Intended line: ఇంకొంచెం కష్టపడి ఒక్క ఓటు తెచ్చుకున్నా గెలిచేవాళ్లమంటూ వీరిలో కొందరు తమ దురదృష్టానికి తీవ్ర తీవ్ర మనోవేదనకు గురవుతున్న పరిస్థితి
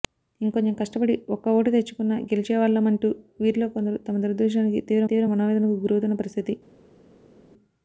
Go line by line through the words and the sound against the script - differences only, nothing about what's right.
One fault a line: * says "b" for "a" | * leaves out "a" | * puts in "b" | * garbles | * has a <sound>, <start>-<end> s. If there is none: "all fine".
all fine